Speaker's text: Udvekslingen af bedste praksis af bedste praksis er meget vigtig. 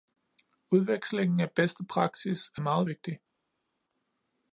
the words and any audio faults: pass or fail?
fail